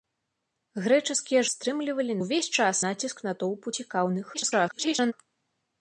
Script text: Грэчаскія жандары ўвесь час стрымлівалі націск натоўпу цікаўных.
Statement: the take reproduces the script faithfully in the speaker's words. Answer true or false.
false